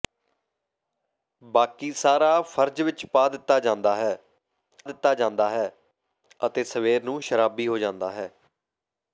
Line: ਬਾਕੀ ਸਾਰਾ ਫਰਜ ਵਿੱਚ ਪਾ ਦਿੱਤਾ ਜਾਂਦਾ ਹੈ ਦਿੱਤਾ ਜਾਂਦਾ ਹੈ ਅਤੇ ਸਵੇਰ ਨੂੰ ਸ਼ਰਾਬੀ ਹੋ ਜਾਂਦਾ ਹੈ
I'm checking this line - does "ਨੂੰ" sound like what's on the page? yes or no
yes